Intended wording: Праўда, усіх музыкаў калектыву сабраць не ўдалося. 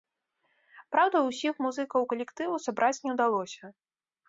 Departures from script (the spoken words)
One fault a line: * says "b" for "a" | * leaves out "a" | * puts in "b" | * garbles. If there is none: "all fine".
all fine